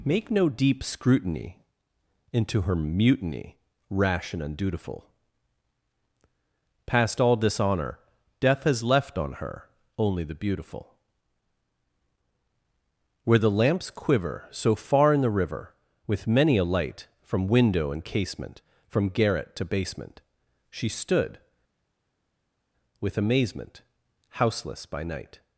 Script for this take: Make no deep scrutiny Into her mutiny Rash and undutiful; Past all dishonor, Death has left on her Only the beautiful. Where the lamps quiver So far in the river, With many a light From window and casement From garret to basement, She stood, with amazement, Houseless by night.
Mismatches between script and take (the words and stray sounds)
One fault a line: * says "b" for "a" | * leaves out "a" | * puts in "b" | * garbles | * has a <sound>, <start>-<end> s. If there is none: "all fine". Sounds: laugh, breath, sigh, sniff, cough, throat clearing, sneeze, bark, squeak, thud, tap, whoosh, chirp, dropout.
all fine